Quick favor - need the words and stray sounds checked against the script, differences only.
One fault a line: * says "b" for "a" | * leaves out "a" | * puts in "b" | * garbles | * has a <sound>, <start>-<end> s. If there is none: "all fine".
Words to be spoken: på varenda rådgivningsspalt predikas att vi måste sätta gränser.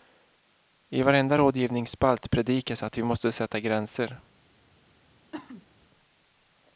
* says "I" for "på"
* has a cough, 5.3-5.7 s